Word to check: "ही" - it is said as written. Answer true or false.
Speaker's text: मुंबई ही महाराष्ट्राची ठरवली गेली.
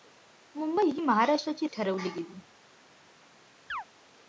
true